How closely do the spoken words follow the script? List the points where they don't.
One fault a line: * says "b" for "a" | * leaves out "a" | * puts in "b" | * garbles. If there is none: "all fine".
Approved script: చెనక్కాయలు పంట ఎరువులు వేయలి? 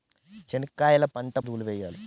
all fine